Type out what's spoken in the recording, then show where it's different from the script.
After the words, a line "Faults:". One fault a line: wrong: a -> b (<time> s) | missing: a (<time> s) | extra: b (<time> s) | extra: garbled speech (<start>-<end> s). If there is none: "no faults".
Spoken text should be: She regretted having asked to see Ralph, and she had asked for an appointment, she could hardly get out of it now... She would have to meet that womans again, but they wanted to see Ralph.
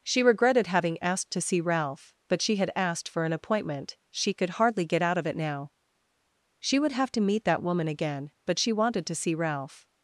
She regretted having asked to see Ralph, but she had asked for an appointment, she could hardly get out of it now... She would have to meet that woman again, but she wanted to see Ralph.
Faults:
wrong: and -> but (2.3 s)
wrong: womans -> woman (7.6 s)
wrong: they -> she (8.6 s)